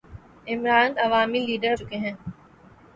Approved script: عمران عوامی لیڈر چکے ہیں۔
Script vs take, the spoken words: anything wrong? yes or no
no